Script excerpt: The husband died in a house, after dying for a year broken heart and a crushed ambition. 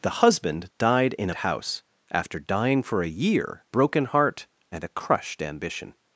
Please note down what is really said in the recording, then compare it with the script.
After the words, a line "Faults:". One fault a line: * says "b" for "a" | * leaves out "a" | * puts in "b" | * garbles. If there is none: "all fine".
The husband died in a house, after dying for a year broken heart and a crushed ambition.
Faults:
all fine